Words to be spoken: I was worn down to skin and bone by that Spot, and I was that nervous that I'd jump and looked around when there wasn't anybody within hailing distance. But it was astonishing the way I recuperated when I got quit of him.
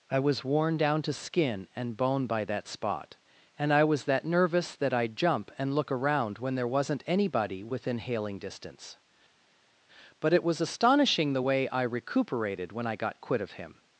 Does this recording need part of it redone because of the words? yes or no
yes